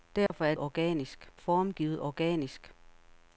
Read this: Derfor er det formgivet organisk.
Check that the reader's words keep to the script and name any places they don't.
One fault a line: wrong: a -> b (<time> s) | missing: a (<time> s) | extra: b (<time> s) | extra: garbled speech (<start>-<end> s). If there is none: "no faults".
wrong: det -> organisk (0.6 s)